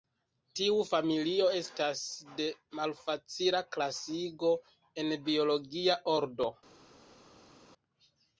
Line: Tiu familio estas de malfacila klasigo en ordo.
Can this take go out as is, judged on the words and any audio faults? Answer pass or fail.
fail